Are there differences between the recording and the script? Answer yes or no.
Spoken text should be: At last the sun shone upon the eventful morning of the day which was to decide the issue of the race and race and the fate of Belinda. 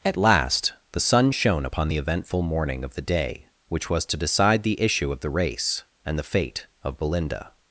yes